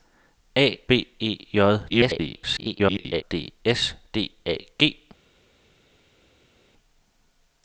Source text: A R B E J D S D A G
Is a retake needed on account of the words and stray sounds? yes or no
yes